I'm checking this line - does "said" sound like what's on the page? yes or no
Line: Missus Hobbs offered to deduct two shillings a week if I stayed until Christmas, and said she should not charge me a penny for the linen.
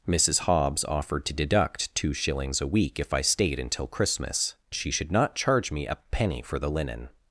no